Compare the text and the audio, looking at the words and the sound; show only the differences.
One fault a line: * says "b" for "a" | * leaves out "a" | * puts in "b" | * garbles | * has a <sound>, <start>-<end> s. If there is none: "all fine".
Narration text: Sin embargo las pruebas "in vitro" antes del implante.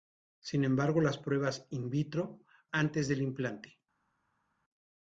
all fine